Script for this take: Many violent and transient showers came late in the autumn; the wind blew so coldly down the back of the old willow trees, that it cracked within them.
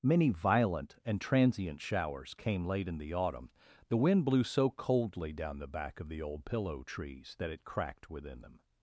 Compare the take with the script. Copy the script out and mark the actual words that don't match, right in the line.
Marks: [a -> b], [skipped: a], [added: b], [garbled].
Many violent and transient showers came late in the autumn; the wind blew so coldly down the back of the old [willow -> pillow] trees, that it cracked within them.